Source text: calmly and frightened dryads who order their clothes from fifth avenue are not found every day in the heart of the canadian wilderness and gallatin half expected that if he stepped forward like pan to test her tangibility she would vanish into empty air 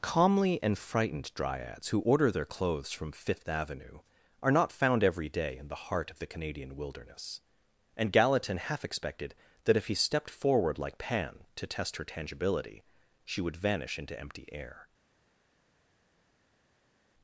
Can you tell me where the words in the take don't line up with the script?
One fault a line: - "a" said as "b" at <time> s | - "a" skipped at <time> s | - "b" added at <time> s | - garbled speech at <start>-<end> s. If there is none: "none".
none